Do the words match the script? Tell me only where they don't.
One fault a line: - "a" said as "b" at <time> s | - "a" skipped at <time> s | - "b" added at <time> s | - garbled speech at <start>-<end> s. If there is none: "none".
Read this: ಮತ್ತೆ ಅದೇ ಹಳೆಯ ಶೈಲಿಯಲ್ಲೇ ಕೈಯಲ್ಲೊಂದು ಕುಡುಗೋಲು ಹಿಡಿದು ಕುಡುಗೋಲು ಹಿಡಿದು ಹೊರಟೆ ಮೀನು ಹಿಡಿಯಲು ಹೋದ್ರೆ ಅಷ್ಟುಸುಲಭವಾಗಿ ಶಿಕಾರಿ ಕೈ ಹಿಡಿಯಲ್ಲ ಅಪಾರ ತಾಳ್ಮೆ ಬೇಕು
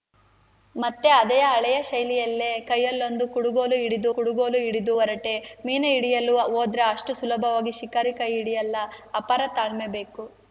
none